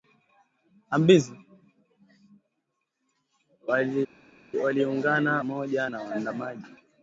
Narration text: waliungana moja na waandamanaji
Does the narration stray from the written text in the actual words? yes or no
no